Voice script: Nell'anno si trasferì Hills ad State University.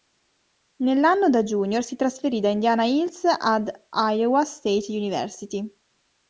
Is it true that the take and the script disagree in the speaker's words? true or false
true